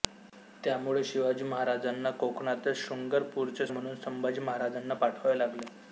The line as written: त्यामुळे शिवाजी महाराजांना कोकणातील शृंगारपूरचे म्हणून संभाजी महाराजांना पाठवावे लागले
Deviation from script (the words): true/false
false